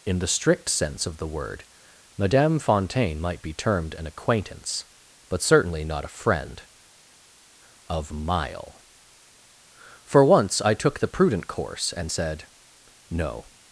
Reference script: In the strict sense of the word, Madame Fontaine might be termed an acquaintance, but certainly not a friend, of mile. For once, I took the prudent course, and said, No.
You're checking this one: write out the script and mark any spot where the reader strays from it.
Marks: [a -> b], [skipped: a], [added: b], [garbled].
In the strict sense of the word, Madame Fontaine might be termed an acquaintance, but certainly not a friend, of mile. For once, I took the prudent course, and said, No.